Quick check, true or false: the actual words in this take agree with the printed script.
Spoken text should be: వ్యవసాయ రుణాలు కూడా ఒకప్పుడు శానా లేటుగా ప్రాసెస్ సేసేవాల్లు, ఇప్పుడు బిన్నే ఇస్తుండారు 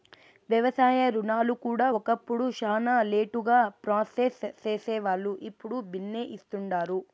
true